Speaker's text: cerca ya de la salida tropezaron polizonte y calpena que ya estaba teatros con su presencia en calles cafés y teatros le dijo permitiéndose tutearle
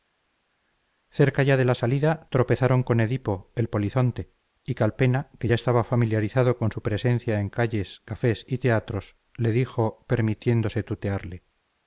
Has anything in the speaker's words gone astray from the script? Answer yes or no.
yes